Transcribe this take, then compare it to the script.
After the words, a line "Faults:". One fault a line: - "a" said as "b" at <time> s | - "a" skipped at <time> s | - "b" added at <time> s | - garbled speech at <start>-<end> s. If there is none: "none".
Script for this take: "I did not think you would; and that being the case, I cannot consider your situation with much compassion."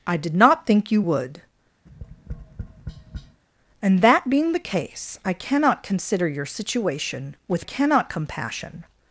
"I did not think you would; and that being the case, I cannot consider your situation with cannot compassion."
Faults:
- "much" said as "cannot" at 7.6 s